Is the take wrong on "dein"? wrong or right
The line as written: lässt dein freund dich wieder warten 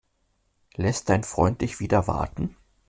right